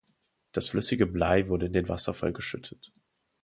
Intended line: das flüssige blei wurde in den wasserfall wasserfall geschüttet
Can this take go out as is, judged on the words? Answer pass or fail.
fail